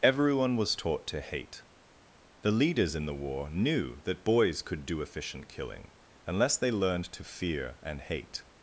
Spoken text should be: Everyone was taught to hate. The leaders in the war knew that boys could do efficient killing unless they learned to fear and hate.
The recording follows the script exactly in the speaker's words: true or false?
true